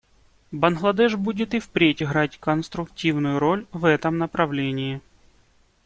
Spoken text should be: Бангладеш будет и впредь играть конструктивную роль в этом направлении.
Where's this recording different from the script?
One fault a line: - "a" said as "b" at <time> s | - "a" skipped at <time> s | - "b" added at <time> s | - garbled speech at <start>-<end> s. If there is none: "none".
none